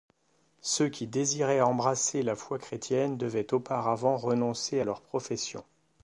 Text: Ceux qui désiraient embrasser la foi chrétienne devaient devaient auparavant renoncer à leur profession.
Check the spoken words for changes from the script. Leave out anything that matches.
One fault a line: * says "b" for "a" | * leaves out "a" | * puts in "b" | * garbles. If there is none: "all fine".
* leaves out "devaient"